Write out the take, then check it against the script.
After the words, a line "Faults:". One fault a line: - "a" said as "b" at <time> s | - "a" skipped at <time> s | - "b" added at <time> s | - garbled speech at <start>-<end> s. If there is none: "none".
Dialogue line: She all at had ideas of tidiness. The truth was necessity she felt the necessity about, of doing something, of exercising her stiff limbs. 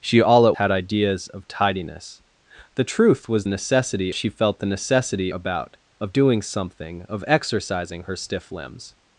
She all at had ideas of tidiness. The truth was necessity she felt the necessity about, of doing something, of exercising her stiff limbs.
Faults:
none